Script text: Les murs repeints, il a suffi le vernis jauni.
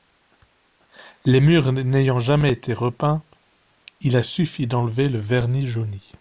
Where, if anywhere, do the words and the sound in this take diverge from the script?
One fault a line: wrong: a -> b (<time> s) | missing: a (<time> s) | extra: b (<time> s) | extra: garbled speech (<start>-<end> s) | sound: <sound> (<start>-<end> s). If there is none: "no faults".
extra: n'ayant jamais été (1.7 s)
extra: d'enlever (4.7 s)